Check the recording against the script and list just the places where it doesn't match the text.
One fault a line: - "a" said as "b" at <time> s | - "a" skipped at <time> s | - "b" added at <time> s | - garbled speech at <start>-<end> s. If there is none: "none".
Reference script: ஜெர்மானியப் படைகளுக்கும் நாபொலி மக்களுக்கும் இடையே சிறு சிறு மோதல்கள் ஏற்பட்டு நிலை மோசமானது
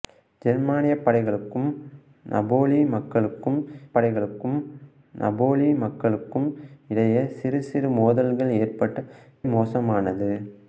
- "படைகளுக்கும் நாபொலி மக்களுக்கும்" added at 3.9 s
- "நிலை" skipped at 9.0 s